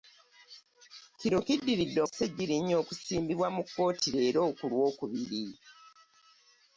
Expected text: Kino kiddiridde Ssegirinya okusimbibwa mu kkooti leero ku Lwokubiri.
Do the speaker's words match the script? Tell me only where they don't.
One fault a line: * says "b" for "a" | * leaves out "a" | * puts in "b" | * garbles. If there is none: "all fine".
all fine